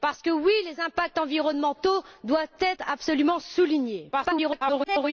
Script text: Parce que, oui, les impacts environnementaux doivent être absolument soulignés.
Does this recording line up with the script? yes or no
no